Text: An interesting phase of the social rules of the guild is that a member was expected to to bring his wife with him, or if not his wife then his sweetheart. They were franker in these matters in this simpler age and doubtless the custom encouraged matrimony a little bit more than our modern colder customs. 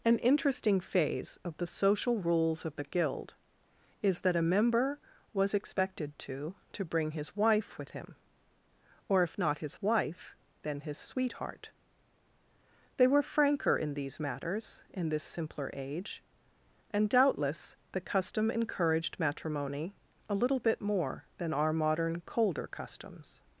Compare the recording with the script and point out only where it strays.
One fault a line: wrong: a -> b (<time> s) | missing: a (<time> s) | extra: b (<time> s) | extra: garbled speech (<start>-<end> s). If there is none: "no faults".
no faults